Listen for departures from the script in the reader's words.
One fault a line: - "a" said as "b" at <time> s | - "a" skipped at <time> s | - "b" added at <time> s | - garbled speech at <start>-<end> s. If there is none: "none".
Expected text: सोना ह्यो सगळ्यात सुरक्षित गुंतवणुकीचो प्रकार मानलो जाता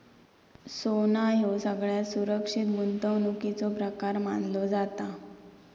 none